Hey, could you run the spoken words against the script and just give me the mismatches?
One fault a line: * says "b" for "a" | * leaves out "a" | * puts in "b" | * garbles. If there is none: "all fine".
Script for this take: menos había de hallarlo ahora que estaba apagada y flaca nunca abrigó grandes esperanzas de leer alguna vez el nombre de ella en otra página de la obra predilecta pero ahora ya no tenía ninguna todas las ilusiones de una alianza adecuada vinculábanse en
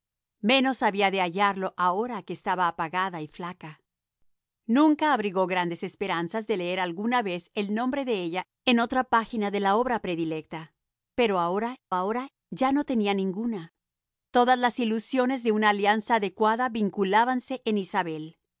* puts in "ahora"